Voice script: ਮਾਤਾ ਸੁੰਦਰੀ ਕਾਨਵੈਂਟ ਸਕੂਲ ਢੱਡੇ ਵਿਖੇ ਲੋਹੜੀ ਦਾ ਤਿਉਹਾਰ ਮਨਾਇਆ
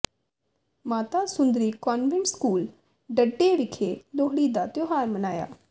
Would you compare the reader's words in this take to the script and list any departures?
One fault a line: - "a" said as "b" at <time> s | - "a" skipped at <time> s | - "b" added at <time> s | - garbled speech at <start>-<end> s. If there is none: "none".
none